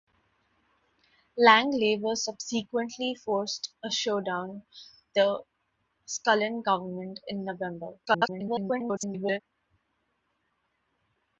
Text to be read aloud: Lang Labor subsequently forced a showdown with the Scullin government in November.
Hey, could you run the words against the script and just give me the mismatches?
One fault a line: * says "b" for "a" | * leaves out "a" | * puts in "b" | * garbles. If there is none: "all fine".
* leaves out "with"
* garbles